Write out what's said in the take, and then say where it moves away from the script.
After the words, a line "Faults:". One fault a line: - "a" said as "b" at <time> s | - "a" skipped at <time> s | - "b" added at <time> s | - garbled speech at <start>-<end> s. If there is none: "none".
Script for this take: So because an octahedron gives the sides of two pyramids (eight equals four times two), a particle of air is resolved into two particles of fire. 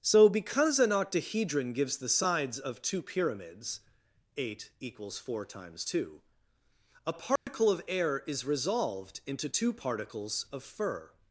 So because an octahedron gives the sides of two pyramids (eight equals four times two), a particle of air is resolved into two particles of fur.
Faults:
- "fire" said as "fur" at 10.6 s